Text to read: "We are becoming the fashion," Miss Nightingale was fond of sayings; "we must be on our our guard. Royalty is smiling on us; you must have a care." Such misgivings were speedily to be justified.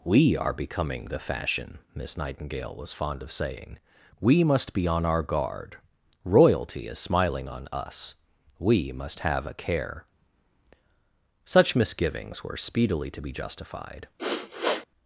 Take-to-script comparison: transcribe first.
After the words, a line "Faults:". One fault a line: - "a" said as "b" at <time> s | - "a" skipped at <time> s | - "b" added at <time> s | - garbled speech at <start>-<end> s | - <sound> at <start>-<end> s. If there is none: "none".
"We are becoming the fashion," Miss Nightingale was fond of saying; "we must be on our guard. Royalty is smiling on us; we must have a care." Such misgivings were speedily to be justified.
Faults:
- "sayings" said as "saying" at 3.3 s
- "our" skipped at 5.2 s
- "you" said as "we" at 8.6 s
- sniff at 14.2-14.9 s